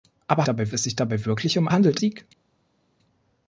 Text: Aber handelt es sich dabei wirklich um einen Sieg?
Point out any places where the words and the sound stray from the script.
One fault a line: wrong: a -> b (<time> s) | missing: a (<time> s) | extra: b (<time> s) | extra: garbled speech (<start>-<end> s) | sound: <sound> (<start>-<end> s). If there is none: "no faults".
wrong: handelt -> dabei (0.4 s)
wrong: einen -> handelt (1.7 s)